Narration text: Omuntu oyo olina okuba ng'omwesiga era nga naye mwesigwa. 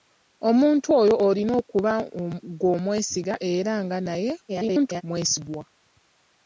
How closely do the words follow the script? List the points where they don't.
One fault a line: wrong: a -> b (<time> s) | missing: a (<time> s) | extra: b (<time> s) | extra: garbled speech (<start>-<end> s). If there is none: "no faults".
extra: garbled speech (4.5-5.0 s)